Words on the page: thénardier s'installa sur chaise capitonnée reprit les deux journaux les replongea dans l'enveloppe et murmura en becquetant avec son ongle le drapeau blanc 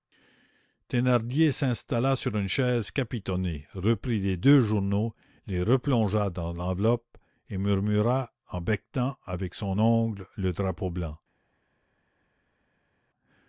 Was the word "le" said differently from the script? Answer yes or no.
no